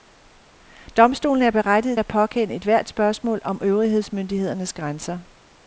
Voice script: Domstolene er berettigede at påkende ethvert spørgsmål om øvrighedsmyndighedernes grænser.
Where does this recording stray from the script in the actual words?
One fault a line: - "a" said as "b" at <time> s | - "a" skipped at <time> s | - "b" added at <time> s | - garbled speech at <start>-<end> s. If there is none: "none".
none